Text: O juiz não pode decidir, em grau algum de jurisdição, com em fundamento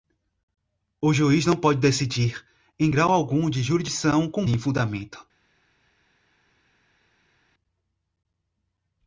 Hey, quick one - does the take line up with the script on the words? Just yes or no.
yes